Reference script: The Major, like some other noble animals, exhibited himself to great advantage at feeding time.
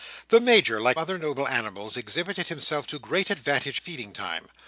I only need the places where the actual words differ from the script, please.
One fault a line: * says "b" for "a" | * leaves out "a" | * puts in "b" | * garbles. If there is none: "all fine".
* leaves out "some"
* leaves out "at"